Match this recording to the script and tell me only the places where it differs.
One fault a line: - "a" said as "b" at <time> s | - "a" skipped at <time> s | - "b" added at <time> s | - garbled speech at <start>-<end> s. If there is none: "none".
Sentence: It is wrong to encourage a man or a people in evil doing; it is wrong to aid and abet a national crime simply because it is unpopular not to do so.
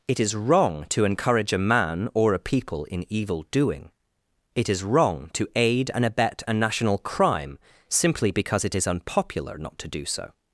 none